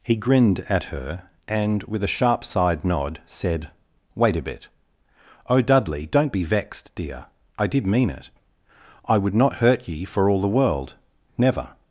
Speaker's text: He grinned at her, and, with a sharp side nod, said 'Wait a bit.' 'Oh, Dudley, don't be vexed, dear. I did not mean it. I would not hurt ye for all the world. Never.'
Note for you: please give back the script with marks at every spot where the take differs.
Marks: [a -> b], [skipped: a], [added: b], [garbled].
He grinned at her, and, with a sharp side nod, said 'Wait a bit.' 'Oh, Dudley, don't be vexed, dear. I did [skipped: not] mean it. I would not hurt ye for all the world. Never.'